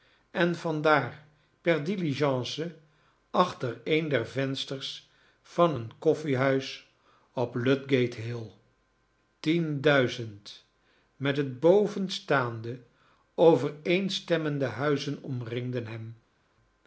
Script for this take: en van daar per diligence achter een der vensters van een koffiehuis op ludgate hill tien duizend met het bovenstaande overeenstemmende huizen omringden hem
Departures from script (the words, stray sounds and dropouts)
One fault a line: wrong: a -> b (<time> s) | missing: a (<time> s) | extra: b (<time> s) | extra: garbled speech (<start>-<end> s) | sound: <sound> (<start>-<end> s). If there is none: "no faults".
no faults